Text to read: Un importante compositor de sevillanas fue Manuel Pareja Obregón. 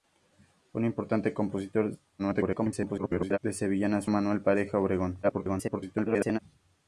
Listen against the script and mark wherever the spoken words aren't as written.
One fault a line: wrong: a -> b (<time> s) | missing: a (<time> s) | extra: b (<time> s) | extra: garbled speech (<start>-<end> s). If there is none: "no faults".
extra: garbled speech (2.2-3.4 s)
missing: fue (4.1 s)
extra: garbled speech (5.2-6.4 s)